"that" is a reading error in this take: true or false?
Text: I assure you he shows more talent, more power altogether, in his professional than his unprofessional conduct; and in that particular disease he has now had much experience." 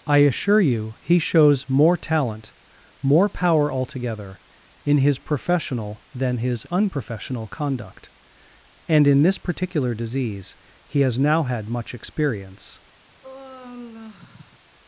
true